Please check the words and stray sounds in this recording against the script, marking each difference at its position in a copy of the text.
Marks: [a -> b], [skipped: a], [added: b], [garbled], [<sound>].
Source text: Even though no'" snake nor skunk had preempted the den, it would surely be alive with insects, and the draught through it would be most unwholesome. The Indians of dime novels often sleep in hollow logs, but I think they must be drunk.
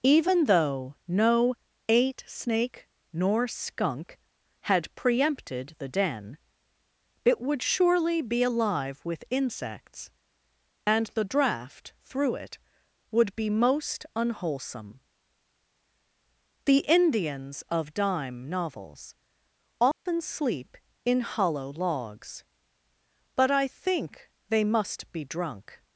Even though no'" [added: eight] snake nor skunk had preempted the den, it would surely be alive with insects, and the draught through it would be most unwholesome. The Indians of dime novels often [dropout] sleep in hollow logs, but I think they must be drunk.